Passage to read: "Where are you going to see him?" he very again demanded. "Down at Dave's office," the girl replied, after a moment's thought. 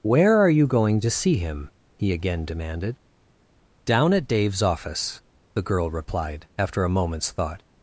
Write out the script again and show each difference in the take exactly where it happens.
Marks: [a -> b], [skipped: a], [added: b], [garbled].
"Where are you going to see him?" he [skipped: very] again demanded. "Down at Dave's office," the girl replied, after a moment's thought.